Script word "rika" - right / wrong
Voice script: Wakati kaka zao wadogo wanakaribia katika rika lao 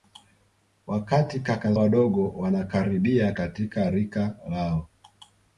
right